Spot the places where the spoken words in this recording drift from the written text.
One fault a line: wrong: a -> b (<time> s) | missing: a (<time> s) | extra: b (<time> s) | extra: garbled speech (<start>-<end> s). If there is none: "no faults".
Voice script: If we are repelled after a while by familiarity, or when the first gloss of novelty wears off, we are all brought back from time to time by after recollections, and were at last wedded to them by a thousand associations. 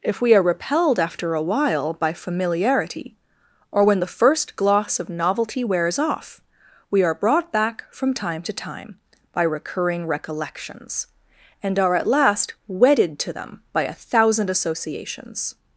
missing: all (7.1 s)
wrong: after -> recurring (9.4 s)
wrong: were -> are (11.8 s)